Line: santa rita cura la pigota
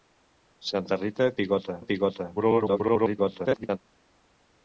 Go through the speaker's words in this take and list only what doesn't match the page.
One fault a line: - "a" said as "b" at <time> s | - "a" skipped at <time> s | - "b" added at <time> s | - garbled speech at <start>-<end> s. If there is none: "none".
- "cura" said as "pigota" at 1.4 s
- garbled speech at 2.4-3.8 s